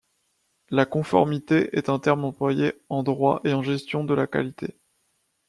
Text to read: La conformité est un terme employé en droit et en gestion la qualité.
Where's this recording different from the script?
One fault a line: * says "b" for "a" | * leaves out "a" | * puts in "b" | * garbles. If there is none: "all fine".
* puts in "de"